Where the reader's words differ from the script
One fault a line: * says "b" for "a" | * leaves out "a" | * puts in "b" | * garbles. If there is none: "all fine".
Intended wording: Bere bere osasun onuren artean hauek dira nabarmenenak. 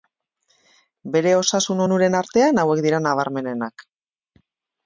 * leaves out "bere"